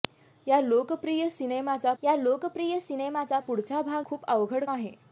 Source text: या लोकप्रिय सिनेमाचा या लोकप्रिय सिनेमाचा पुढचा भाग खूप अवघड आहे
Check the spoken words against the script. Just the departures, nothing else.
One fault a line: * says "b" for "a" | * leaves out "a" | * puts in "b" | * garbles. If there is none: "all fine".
all fine